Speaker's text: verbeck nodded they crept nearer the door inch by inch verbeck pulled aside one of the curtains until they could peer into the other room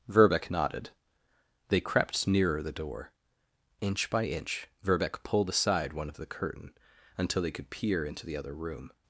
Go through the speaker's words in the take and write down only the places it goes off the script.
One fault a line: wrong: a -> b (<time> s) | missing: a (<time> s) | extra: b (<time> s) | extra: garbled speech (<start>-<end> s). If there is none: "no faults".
wrong: curtains -> curtain (6.3 s)